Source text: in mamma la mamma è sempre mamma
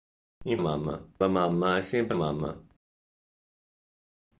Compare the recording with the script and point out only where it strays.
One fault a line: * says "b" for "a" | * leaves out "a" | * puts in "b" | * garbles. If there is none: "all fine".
all fine